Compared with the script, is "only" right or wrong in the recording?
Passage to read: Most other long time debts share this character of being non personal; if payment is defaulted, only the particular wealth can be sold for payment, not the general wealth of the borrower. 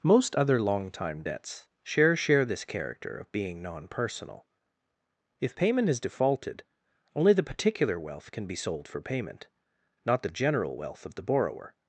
right